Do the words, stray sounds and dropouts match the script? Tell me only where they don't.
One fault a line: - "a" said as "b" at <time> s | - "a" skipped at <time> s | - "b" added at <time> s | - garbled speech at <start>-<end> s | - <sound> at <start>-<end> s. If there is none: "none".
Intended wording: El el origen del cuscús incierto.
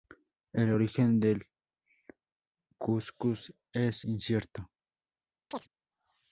- "el" skipped at 0.7 s
- "es" added at 3.7 s
- chirp at 5.5-5.7 s